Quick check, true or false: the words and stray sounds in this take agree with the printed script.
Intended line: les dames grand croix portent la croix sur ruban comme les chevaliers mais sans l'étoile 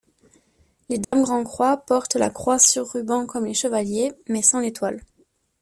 false